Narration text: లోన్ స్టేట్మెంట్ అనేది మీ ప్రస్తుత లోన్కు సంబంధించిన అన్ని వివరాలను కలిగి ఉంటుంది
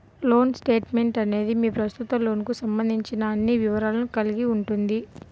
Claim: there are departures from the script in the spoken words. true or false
false